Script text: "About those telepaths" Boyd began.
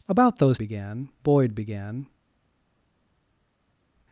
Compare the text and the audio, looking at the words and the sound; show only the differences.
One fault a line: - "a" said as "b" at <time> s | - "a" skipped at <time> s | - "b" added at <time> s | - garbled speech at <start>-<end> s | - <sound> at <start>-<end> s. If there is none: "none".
- "telepaths" said as "began" at 0.6 s